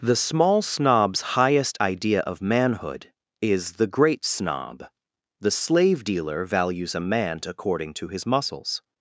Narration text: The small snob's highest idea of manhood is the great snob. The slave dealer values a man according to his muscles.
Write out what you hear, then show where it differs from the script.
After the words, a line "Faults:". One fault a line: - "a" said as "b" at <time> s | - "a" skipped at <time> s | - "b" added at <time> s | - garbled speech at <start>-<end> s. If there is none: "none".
The small snob's highest idea of manhood is the great snob. The slave dealer values a man according to his muscles.
Faults:
none